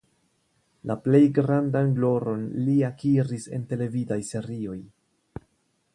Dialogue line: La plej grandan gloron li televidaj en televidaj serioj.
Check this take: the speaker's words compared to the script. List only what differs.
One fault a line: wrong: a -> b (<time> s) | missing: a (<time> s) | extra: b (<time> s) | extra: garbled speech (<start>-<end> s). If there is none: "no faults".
wrong: televidaj -> akiris (2.9 s)